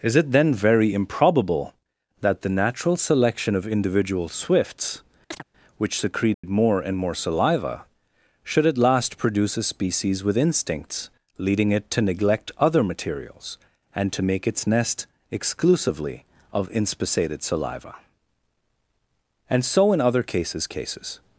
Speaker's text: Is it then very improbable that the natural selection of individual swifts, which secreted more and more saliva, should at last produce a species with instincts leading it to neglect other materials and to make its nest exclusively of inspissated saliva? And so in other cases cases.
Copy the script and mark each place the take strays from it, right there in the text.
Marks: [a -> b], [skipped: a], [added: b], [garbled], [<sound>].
Is it then very improbable that the natural selection of individual swifts, [chirp] which secreted [dropout] more and more saliva, should at last produce a species with instincts leading it to neglect other materials and to make its nest exclusively of inspissated saliva? And so in other cases cases.